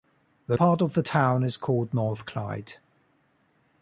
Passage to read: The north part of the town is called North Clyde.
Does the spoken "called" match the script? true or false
true